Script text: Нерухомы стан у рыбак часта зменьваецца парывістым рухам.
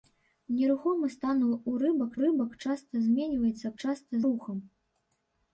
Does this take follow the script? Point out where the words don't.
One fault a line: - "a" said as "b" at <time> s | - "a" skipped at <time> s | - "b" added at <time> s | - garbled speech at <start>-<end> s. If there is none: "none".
- "рыбак" added at 2.2 s
- "парывістым" said as "часта" at 3.8 s